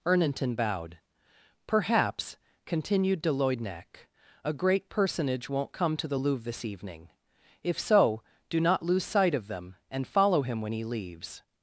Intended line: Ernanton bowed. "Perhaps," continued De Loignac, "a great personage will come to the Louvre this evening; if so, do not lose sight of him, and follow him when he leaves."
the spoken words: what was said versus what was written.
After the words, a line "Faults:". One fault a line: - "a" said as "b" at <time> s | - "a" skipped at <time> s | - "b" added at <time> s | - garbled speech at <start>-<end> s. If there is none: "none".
Ernanton bowed. "Perhaps," continued De Loignac, "a great personage won't come to the Louvre this evening; if so, do not lose sight of them, and follow him when he leaves."
Faults:
- "will" said as "won't" at 5.5 s
- "him" said as "them" at 9.5 s